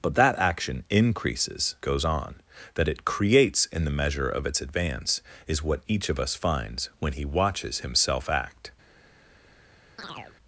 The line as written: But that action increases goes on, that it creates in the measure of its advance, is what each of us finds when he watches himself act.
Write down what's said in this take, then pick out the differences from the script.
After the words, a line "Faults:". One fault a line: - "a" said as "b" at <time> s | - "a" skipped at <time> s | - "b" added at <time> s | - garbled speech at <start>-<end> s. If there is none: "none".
But that action increases goes on, that it creates in the measure of its advance, is what each of us finds when he watches himself act.
Faults:
none